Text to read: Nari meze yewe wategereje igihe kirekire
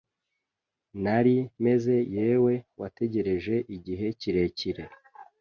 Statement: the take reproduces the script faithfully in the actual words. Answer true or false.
true